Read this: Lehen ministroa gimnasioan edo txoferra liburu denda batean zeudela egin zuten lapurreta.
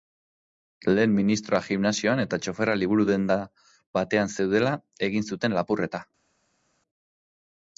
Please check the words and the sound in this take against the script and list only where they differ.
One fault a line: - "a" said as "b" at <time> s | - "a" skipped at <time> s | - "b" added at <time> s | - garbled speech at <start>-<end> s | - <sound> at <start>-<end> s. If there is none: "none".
- "edo" said as "eta" at 2.2 s